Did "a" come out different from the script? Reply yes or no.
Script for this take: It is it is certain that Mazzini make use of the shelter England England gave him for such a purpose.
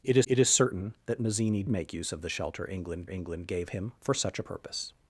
no